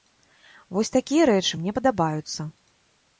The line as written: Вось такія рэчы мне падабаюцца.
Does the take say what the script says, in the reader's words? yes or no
yes